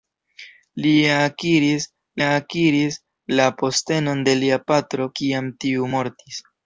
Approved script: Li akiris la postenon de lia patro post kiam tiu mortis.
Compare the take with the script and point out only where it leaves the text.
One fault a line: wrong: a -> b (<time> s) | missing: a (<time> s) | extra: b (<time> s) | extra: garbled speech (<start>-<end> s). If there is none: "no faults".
extra: akiris (2.3 s)
missing: post (5.1 s)